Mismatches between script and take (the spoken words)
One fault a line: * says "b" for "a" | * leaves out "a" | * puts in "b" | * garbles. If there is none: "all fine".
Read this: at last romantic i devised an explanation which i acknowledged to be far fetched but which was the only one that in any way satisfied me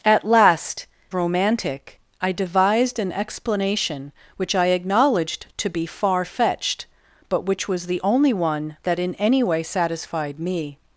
all fine